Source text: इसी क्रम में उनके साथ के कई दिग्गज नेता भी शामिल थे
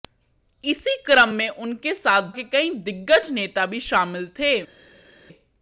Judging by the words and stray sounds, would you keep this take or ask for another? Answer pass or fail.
pass